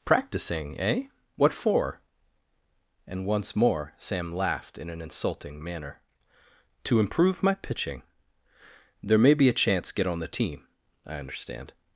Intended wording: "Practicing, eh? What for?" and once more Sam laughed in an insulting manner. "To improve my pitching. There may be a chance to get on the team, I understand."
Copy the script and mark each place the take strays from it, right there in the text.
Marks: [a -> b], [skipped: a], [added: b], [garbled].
"Practicing, eh? What for?" and once more Sam laughed in an insulting manner. "To improve my pitching. There may be a chance [skipped: to] get on the team, I understand."